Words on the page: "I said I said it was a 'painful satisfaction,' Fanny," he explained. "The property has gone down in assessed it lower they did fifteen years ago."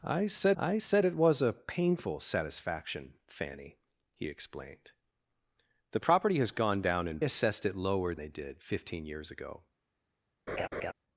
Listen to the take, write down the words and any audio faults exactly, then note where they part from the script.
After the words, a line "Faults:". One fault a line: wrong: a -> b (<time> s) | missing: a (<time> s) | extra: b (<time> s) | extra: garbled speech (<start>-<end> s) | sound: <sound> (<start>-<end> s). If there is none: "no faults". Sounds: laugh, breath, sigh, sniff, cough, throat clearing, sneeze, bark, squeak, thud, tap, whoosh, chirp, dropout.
"I said I said it was a 'painful satisfaction,' Fanny," he explained. "The property has gone down in assessed it lower they did fifteen years ago."
Faults:
sound: laugh (10.5-10.9 s)